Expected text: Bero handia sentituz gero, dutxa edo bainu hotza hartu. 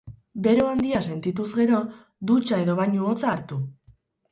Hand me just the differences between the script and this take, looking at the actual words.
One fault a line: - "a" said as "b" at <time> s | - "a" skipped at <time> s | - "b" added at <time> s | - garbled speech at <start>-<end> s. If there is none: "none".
none